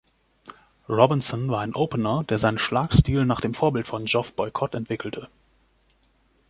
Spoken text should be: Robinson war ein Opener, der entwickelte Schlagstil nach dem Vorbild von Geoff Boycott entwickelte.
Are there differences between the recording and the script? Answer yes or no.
yes